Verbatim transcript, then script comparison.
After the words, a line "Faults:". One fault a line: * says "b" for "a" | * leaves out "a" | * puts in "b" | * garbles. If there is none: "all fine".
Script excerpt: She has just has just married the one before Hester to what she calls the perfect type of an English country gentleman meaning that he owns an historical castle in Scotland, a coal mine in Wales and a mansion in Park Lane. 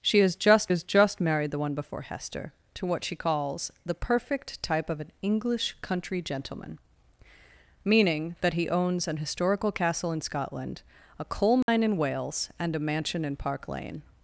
She has just has just married the one before Hester to what she calls the perfect type of an English country gentleman meaning that he owns an historical castle in Scotland, a coal mine in Wales and a mansion in Park Lane.
Faults:
all fine